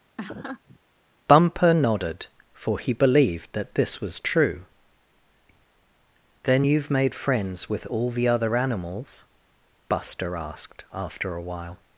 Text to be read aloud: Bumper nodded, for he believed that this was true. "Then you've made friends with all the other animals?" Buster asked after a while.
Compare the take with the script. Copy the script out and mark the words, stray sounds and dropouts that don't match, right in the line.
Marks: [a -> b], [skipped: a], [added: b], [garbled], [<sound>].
[laugh] Bumper nodded, for he believed that this was true. "Then you've made friends with all the other animals?" Buster asked after a while.